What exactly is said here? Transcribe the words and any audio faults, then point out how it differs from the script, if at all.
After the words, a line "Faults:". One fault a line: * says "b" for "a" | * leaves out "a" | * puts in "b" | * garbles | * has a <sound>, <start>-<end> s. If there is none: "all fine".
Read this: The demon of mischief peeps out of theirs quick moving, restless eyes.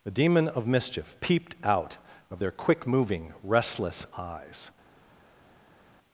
The demon of mischief peeped out of their quick moving, restless eyes.
Faults:
* says "peeped" for "peeps"
* says "their" for "theirs"